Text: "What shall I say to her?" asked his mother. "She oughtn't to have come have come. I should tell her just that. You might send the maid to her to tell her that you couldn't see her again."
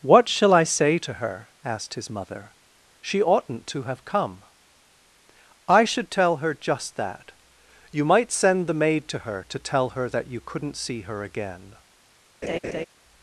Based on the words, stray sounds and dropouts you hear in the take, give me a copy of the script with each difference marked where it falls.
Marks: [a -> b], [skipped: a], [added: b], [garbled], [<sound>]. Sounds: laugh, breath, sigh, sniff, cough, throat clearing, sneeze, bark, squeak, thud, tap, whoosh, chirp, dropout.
"What shall I say to her?" asked his mother. "She oughtn't to have come [skipped: have come.] I should tell her just that. You might send the maid to her to tell her that you couldn't see her again." [laugh]